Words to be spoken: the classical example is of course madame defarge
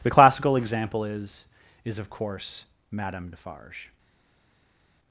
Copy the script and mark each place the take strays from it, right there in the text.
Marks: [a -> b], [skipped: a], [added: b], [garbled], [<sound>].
the classical example is [added: is] of course madame defarge